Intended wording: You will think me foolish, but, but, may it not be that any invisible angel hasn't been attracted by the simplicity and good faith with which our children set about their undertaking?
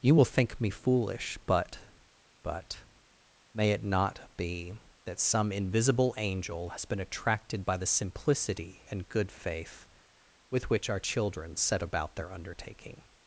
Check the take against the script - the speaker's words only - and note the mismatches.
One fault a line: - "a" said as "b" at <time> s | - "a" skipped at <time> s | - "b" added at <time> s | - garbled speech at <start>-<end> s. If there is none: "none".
- "any" said as "some" at 5.2 s
- "hasn't" said as "has" at 6.7 s